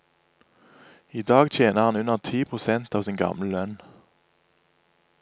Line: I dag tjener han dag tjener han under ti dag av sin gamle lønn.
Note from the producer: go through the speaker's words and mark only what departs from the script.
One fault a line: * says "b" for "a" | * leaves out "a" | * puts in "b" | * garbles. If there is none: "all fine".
* leaves out "dag tjener han"
* says "prosent" for "dag"